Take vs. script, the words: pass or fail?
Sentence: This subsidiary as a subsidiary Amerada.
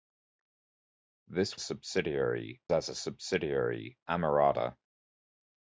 pass